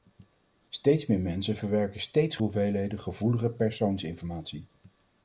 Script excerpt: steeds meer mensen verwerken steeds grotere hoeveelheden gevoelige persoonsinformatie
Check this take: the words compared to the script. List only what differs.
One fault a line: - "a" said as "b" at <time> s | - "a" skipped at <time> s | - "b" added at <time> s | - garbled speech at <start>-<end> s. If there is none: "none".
- "grotere" skipped at 2.4 s